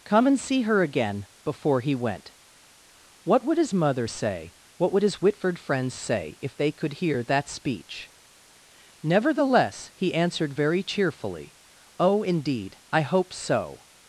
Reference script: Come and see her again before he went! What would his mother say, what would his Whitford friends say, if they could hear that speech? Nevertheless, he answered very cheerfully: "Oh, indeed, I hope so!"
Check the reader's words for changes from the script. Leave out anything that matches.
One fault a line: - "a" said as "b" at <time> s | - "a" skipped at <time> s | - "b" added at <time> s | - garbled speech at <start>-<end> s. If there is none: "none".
none